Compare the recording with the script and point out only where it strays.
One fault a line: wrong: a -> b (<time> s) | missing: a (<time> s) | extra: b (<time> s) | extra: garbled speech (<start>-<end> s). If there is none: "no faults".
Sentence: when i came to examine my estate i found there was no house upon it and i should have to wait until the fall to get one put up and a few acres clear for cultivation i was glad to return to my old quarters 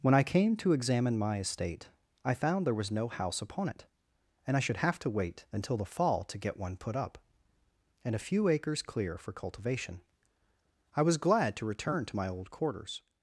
no faults